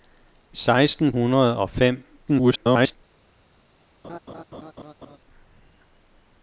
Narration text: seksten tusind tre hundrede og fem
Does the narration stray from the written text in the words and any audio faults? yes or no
yes